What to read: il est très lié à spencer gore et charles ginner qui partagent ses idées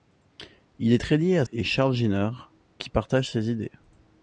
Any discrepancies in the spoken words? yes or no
yes